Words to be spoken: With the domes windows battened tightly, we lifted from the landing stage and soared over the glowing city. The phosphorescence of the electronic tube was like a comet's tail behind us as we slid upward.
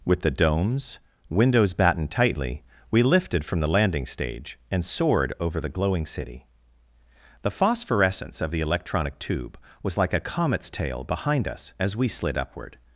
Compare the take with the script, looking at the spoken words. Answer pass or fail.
pass